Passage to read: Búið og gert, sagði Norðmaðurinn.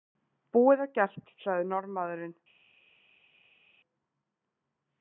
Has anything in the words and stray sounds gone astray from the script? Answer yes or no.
no